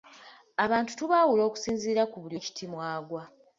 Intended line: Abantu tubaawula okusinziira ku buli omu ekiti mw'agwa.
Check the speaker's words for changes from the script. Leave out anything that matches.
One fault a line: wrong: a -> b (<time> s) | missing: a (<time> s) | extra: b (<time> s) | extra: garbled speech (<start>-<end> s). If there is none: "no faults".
missing: omu (2.4 s)